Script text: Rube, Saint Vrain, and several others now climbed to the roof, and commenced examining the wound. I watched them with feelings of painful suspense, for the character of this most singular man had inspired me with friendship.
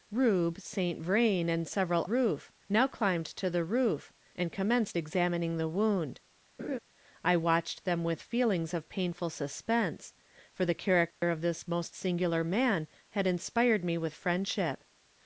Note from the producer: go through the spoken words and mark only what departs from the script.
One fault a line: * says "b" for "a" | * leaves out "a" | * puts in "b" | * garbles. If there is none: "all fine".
* says "roof" for "others"